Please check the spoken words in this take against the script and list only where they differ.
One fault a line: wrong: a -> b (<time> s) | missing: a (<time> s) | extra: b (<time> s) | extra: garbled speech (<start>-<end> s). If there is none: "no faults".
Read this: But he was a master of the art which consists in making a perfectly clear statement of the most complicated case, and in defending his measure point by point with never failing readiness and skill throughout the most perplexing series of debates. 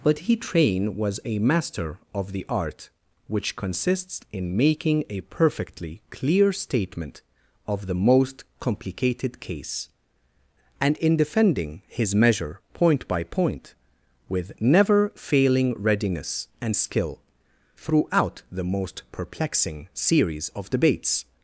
extra: train (0.3 s)